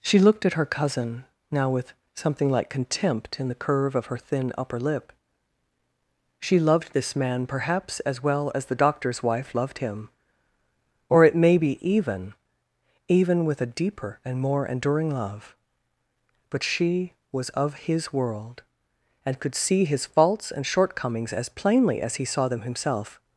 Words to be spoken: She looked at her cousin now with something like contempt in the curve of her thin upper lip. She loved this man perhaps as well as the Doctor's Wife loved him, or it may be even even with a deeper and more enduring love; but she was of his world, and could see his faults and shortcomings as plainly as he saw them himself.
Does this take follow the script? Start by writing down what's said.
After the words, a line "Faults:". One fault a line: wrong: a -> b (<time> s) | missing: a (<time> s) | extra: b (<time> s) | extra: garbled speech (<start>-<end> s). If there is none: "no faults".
She looked at her cousin now with something like contempt in the curve of her thin upper lip. She loved this man perhaps as well as the Doctor's Wife loved him, or it may be even even with a deeper and more enduring love; but she was of his world, and could see his faults and shortcomings as plainly as he saw them himself.
Faults:
no faults